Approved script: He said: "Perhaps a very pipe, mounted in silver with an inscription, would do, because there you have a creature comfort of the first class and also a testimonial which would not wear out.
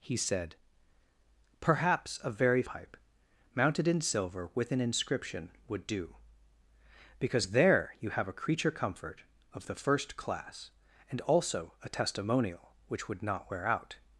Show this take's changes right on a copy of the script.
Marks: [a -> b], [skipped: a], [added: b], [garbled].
He said: "Perhaps a very pipe, mounted in silver with an inscription, would do, because there you have a creature comfort of the first class and also a testimonial which would not wear out.